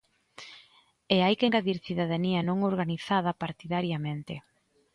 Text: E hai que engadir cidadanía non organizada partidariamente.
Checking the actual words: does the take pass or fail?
pass